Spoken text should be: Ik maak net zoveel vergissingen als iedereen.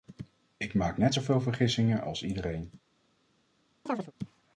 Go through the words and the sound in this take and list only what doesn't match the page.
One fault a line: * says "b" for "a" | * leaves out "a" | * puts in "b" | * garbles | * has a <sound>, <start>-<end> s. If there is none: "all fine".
* has a chirp, 3.9-4.1 s